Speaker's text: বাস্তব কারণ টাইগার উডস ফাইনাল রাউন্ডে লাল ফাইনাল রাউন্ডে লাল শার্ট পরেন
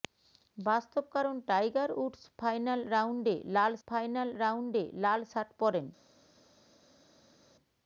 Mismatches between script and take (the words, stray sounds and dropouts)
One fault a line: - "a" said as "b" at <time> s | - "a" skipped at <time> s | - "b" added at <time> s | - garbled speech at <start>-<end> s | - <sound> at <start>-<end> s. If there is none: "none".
none